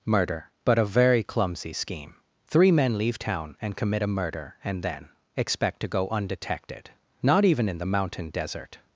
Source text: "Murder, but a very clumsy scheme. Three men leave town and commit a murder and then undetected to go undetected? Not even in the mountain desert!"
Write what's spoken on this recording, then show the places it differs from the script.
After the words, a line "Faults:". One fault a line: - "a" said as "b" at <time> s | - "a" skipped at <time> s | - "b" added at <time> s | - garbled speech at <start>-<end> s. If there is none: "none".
"Murder, but a very clumsy scheme. Three men leave town and commit a murder and then expect to go undetected? Not even in the mountain desert!"
Faults:
- "undetected" said as "expect" at 5.4 s